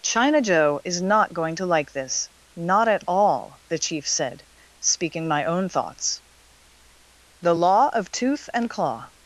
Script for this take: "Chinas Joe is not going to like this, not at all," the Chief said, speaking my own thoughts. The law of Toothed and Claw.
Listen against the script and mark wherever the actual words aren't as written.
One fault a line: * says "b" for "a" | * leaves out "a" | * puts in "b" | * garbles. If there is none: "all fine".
* says "China" for "Chinas"
* says "Tooth" for "Toothed"